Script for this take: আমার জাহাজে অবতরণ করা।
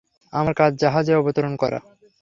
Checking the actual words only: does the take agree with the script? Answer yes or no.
no